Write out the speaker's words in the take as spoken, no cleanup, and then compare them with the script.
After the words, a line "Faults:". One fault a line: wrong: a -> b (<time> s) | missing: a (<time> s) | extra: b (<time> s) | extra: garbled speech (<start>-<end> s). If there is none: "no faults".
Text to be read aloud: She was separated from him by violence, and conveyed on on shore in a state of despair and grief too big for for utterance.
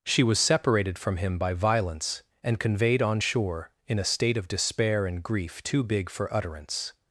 She was separated from him by violence, and conveyed on shore in a state of despair and grief too big for utterance.
Faults:
missing: on (3.2 s)
missing: for (6.3 s)